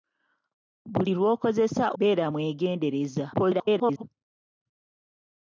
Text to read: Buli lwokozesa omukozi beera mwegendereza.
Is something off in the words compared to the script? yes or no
yes